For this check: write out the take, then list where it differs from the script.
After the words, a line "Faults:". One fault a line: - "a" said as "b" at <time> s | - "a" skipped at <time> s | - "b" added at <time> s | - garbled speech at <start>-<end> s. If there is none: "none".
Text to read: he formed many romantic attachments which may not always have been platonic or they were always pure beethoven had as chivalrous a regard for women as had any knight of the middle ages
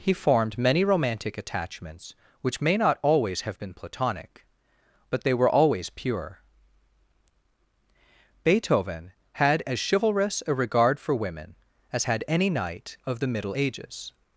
he formed many romantic attachments which may not always have been platonic but they were always pure beethoven had as chivalrous a regard for women as had any knight of the middle ages
Faults:
- "or" said as "but" at 5.1 s